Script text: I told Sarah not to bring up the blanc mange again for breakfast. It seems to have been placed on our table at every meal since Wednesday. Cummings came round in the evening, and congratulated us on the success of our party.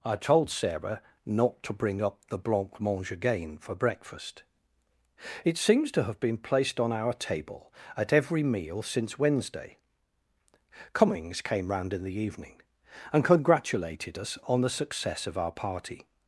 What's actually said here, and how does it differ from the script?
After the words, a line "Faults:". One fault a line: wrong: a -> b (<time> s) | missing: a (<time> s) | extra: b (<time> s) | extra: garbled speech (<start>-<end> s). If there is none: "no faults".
I told Sarah not to bring up the blanc mange again for breakfast. It seems to have been placed on our table at every meal since Wednesday. Cummings came round in the evening, and congratulated us on the success of our party.
Faults:
no faults